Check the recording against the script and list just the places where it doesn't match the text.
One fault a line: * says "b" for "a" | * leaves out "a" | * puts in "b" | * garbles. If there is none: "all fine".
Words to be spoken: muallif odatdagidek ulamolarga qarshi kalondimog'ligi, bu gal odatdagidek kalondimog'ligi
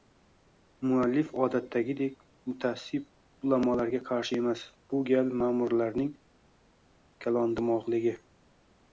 * puts in "mutaassib"
* says "emas" for "kalondimog'ligi"
* says "ma`murlarning" for "odatdagidek"